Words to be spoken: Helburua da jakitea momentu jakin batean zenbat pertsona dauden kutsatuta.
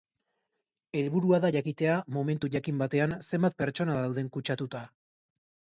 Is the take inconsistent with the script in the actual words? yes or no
no